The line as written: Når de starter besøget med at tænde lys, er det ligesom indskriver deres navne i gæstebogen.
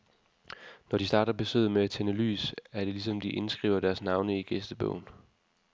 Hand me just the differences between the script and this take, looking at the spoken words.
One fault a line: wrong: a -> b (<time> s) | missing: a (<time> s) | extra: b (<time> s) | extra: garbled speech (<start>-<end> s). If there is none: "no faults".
extra: de (3.2 s)